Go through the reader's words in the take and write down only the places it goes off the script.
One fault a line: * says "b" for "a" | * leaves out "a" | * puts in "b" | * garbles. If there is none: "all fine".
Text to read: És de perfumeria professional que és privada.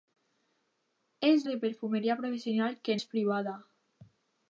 all fine